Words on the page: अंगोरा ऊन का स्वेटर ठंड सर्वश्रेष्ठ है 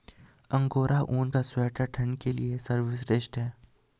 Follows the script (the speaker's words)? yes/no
no